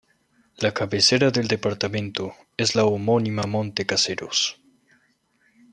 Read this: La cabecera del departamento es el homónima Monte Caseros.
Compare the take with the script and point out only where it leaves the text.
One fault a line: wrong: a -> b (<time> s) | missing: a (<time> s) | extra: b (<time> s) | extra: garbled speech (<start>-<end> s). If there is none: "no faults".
wrong: el -> la (2.7 s)